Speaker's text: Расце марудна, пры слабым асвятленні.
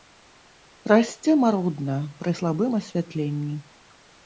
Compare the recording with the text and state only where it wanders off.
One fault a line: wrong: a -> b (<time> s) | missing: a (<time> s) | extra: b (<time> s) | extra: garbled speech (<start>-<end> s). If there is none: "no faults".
no faults